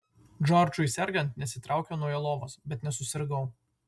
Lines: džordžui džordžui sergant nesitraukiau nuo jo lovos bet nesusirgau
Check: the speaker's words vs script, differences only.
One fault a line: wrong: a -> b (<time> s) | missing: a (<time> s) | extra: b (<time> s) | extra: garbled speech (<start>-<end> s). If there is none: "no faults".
missing: džordžui (0.8 s)